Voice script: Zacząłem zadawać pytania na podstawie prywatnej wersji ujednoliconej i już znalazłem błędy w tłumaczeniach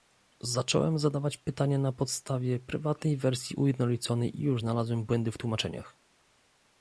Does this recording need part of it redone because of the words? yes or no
no